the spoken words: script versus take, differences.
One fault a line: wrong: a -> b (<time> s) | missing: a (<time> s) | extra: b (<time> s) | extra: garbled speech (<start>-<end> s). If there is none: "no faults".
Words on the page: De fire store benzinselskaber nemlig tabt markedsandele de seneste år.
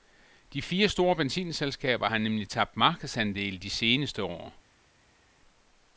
extra: har (2.1 s)